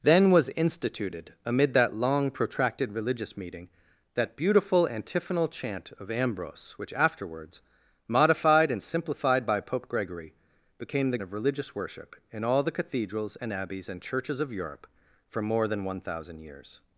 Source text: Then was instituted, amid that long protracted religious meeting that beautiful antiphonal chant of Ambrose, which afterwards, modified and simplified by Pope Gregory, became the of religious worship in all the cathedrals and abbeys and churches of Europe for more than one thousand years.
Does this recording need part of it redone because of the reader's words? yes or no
no